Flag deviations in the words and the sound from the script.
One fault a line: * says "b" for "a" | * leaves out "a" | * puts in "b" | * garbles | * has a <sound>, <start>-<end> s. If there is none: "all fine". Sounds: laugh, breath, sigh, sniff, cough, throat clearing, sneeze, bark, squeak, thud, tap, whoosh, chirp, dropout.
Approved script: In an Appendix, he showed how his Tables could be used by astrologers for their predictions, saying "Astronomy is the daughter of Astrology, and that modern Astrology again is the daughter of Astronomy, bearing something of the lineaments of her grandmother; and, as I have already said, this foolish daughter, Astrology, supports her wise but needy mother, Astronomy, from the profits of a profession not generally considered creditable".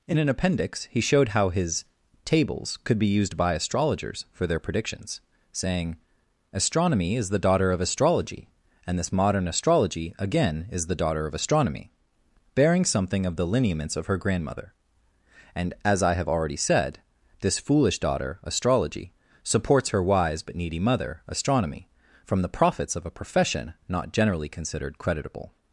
* says "this" for "that"